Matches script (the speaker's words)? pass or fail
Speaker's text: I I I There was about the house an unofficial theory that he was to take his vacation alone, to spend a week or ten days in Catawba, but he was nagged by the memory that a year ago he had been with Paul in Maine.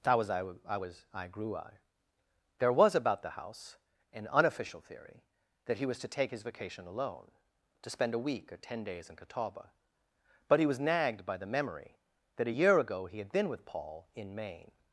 fail